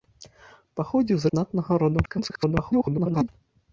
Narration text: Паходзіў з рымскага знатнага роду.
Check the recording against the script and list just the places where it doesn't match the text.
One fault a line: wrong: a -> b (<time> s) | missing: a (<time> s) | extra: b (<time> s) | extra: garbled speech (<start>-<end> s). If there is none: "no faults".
missing: рымскага (1.3 s)
extra: garbled speech (2.1-3.3 s)